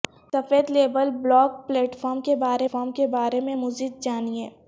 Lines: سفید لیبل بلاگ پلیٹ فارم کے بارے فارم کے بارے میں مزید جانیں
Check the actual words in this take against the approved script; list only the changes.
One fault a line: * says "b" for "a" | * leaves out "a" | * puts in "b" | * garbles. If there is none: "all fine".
all fine